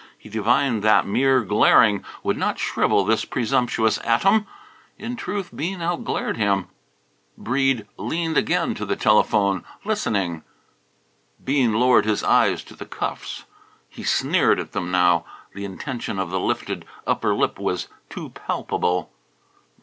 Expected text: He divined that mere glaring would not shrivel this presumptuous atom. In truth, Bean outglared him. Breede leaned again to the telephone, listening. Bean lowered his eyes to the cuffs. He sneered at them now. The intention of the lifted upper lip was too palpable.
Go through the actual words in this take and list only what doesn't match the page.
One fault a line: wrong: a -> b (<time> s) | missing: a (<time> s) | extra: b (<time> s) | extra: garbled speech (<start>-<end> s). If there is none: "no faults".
no faults